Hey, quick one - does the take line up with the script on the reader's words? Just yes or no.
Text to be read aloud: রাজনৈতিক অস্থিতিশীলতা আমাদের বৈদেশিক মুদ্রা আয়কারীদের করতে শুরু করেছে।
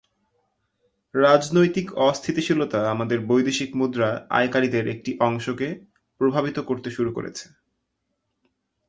no